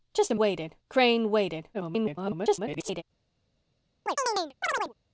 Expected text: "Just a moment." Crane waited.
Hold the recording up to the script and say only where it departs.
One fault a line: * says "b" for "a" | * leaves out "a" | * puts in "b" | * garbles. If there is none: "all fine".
* says "waited" for "moment"
* garbles